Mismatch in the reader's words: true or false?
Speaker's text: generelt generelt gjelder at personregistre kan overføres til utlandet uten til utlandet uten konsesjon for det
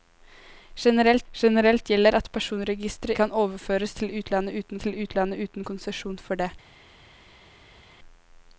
false